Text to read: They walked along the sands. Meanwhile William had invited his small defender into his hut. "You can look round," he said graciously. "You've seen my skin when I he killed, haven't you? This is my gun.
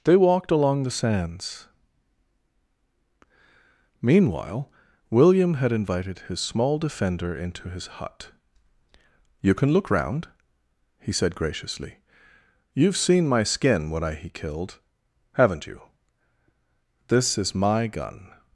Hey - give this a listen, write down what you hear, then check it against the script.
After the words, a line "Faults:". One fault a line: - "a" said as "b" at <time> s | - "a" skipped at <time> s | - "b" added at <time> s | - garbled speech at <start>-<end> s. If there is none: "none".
They walked along the sands. Meanwhile William had invited his small defender into his hut. "You can look round," he said graciously. "You've seen my skin when I he killed, haven't you? This is my gun.
Faults:
none